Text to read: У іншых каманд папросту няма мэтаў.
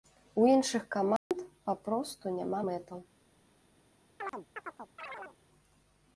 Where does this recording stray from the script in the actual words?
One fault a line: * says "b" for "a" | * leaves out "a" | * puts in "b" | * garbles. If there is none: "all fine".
all fine